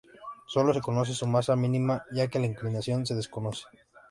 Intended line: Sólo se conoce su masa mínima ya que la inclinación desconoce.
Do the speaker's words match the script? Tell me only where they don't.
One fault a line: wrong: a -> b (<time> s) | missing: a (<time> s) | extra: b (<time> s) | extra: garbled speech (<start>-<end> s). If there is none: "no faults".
extra: se (3.1 s)